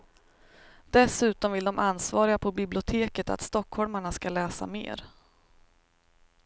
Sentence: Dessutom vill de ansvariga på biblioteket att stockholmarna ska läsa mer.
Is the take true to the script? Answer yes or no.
yes